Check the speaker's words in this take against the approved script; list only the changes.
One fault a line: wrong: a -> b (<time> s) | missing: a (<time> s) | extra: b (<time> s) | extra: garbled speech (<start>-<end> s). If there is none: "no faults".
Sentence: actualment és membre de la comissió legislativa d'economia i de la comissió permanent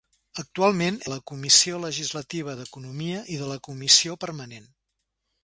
missing: és membre (0.9 s)